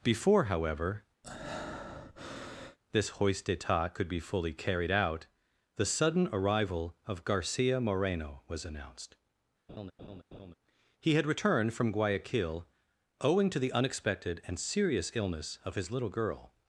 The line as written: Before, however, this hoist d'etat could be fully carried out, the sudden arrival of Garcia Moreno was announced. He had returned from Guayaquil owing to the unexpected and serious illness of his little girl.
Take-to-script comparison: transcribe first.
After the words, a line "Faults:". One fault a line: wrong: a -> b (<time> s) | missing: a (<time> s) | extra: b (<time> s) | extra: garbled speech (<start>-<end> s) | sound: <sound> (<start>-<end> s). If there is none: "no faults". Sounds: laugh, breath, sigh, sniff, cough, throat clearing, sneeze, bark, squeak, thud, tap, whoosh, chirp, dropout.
Before, however, this hoist d'etat could be fully carried out, the sudden arrival of Garcia Moreno was announced. He had returned from Guayaquil owing to the unexpected and serious illness of his little girl.
Faults:
sound: breath (1.2-2.8 s)
sound: laugh (9.7-10.6 s)